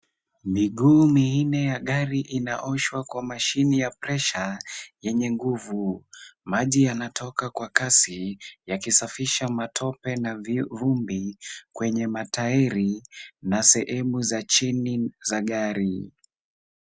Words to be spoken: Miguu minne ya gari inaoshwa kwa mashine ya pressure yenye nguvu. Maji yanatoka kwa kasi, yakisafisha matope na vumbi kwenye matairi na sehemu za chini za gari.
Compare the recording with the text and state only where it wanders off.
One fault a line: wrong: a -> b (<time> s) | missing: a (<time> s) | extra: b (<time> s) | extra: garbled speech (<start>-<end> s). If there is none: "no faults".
no faults